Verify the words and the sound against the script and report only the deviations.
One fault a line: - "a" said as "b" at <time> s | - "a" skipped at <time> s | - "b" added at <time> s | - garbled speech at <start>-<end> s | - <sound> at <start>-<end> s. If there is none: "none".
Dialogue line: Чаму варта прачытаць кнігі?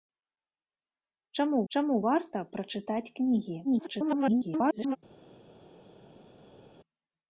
- "чаму" added at 1.7 s
- garbled speech at 3.6-5.0 s